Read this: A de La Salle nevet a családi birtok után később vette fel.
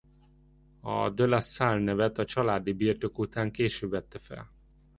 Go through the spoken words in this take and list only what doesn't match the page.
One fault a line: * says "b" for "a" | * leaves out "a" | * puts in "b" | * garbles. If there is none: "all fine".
all fine